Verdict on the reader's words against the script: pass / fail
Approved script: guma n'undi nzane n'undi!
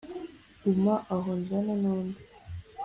fail